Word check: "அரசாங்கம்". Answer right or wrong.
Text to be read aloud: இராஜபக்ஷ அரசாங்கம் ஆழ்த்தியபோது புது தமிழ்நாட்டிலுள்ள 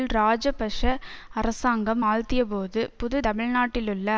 right